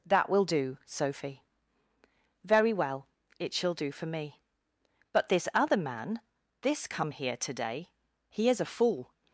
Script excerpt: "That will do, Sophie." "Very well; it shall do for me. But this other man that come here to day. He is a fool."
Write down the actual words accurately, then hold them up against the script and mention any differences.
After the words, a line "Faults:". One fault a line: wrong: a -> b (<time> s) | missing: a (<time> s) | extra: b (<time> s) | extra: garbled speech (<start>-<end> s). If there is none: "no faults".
"That will do, Sophie." "Very well; it shall do for me. But this other man this come here to day. He is a fool."
Faults:
wrong: that -> this (6.6 s)